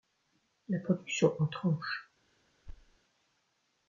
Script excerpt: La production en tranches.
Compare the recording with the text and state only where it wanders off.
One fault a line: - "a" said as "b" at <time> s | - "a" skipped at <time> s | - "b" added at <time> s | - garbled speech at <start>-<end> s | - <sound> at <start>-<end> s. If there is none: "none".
- thud at 2.7-3.0 s